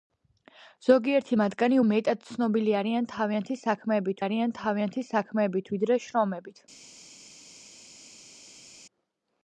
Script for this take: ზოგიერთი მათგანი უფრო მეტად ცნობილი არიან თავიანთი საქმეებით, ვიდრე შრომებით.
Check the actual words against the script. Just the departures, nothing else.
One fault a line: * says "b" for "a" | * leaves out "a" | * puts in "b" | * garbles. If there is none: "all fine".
* leaves out "უფრო"
* puts in "არიან თავიანთი საქმეებით"